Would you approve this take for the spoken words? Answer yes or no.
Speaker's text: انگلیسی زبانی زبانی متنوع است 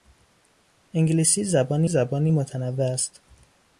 yes